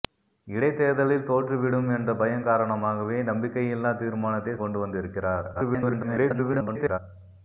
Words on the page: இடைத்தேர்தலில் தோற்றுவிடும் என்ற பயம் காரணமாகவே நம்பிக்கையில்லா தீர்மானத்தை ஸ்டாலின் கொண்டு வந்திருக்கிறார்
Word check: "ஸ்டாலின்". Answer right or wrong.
wrong